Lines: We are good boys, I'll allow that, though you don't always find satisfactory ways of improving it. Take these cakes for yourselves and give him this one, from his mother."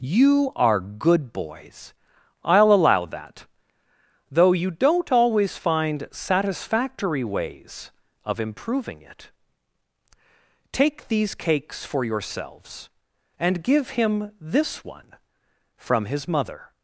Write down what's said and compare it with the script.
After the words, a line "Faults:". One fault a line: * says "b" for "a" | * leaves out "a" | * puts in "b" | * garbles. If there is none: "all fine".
You are good boys, I'll allow that, though you don't always find satisfactory ways of improving it. Take these cakes for yourselves and give him this one, from his mother."
Faults:
* says "You" for "We"